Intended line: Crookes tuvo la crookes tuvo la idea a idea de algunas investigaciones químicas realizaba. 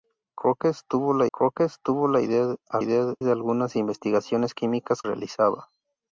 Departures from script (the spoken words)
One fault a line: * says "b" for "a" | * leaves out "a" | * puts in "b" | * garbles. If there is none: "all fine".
all fine